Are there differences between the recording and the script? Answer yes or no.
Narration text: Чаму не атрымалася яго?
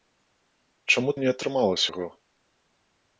no